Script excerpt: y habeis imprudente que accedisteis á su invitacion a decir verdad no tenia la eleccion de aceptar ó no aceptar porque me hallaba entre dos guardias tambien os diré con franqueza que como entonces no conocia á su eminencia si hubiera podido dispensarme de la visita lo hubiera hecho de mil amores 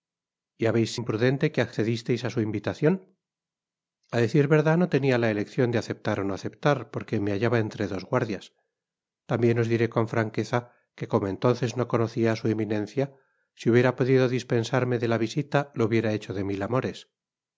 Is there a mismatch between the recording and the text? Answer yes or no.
no